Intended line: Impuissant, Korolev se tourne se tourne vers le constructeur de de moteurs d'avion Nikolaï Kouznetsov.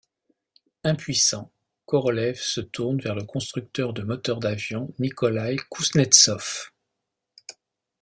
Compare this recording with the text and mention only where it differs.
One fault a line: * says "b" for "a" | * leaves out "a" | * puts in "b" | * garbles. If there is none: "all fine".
* leaves out "se tourne"
* leaves out "de"